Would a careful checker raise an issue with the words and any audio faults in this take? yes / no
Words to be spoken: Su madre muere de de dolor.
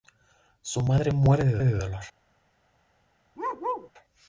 yes